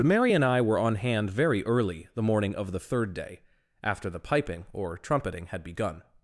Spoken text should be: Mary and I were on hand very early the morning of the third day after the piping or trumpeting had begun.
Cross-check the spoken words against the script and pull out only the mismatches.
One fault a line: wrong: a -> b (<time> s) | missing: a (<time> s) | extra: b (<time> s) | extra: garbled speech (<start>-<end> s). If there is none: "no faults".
no faults